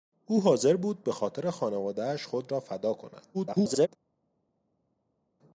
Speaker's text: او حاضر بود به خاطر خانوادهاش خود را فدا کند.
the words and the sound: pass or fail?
fail